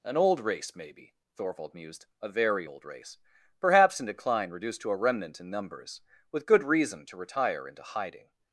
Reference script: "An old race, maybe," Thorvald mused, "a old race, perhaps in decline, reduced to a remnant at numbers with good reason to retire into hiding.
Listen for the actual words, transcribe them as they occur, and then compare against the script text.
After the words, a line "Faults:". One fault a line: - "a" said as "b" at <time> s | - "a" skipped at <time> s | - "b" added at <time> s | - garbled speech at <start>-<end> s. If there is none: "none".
"An old race, maybe," Thorvald mused, "a very old race, perhaps in decline, reduced to a remnant in numbers with good reason to retire into hiding.
Faults:
- "very" added at 2.3 s
- "at" said as "in" at 5.4 s